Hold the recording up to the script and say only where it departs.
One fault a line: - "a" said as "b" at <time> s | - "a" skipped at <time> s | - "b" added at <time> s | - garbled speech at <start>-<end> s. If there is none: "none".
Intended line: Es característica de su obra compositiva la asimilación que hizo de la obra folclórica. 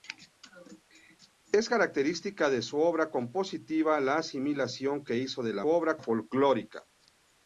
none